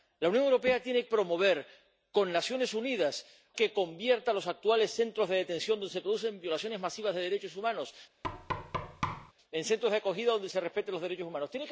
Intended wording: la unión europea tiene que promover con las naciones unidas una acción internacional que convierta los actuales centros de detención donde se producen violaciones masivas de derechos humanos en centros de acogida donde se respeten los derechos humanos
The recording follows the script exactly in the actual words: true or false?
false